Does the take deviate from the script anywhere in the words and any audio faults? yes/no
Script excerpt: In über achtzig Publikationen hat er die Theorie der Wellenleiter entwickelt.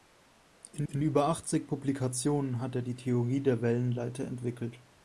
yes